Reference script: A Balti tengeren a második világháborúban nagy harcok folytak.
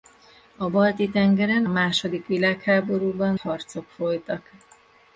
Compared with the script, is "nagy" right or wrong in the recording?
wrong